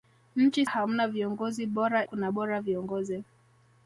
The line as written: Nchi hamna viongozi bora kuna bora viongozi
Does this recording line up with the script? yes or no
yes